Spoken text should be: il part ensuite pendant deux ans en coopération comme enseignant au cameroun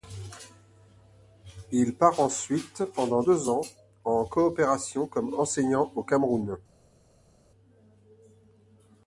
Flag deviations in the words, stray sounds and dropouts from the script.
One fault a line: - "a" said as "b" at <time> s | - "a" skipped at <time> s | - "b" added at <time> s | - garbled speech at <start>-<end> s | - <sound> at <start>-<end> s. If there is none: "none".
none